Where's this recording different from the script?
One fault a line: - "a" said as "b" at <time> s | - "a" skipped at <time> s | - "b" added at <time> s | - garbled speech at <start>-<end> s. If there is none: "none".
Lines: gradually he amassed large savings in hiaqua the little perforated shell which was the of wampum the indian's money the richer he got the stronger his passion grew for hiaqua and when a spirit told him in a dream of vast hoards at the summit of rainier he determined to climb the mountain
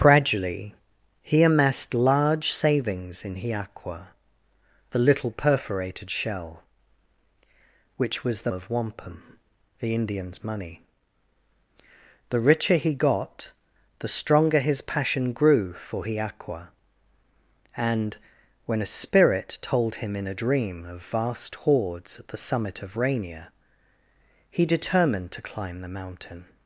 none